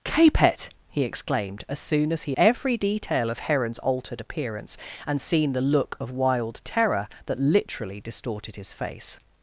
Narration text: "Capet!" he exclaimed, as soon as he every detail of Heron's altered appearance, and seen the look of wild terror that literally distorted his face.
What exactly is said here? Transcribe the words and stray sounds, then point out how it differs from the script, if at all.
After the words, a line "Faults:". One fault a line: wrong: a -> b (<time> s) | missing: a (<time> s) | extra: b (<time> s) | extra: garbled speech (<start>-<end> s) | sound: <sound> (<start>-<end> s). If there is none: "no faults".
"Capet!" he exclaimed, as soon as he every detail of Heron's altered appearance, and seen the look of wild terror that literally distorted his face.
Faults:
no faults